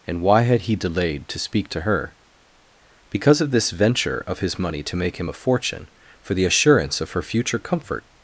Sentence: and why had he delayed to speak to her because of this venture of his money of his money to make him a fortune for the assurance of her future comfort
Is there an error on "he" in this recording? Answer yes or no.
no